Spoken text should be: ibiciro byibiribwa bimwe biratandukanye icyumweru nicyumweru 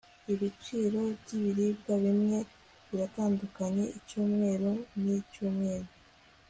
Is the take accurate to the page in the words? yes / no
yes